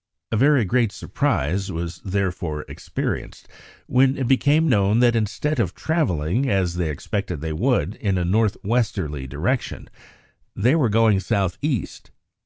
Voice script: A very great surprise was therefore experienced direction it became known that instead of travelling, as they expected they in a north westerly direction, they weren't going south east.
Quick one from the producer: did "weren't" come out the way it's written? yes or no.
no